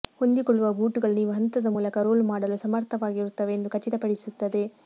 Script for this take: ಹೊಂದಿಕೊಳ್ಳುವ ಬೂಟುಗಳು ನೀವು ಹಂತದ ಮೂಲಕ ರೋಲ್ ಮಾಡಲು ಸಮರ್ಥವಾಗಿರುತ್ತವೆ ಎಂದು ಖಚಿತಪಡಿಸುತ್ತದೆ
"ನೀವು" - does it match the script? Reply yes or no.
yes